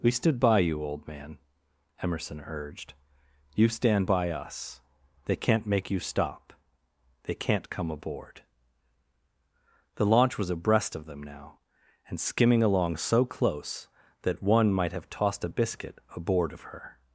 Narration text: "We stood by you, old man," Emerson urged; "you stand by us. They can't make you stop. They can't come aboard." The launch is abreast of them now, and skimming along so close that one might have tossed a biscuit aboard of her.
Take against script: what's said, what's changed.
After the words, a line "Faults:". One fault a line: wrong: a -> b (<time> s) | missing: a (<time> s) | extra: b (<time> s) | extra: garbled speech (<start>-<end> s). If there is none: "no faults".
"We stood by you, old man," Emerson urged; "you stand by us. They can't make you stop. They can't come aboard." The launch was abreast of them now, and skimming along so close that one might have tossed a biscuit aboard of her.
Faults:
wrong: is -> was (10.4 s)